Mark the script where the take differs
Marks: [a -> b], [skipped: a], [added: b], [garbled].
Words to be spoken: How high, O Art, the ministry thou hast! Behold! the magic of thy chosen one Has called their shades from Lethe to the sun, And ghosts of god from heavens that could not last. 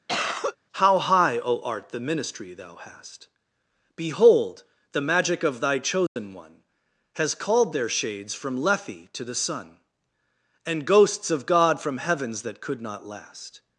How high, O Art, the ministry thou hast! Behold! the magic of thy chosen one Has called their shades from Lethe to the sun, And ghosts of god from heavens that could not last.